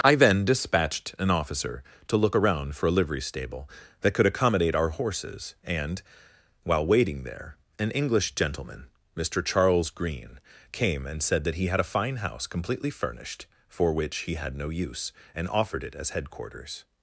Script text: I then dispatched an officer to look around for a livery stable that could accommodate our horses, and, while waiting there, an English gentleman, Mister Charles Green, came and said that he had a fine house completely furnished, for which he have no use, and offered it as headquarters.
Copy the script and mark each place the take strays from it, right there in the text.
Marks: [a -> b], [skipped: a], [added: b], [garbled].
I then dispatched an officer to look around for a livery stable that could accommodate our horses, and, while waiting there, an English gentleman, Mister Charles Green, came and said that he had a fine house completely furnished, for which he [have -> had] no use, and offered it as headquarters.